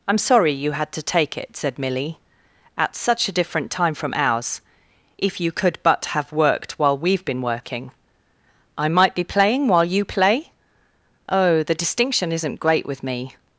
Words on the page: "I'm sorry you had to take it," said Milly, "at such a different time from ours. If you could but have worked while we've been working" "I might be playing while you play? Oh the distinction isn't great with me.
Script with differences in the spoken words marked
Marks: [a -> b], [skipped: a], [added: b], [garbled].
"I'm sorry you had to take it," said Milly, "at such a different time from ours. If you could but have worked while we've been working" "I might be playing while you play? Oh the distinction isn't great with me.